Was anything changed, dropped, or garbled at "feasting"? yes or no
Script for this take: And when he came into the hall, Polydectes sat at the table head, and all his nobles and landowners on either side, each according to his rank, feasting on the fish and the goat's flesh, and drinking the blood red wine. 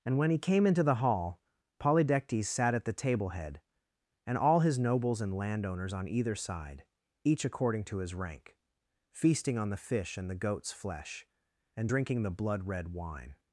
no